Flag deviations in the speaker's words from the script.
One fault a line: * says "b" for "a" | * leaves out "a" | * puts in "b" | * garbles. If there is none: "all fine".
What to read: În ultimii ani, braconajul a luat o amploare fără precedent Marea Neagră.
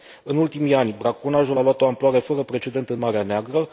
* puts in "în"